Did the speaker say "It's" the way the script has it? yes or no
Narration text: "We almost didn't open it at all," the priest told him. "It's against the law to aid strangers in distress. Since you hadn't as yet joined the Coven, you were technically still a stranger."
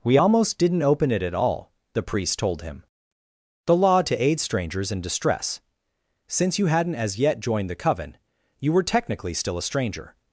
no